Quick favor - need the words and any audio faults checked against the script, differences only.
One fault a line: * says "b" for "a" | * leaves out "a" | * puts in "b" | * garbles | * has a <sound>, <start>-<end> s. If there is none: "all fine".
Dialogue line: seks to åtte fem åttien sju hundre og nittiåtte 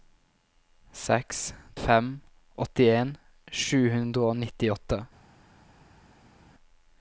* leaves out "to åtte"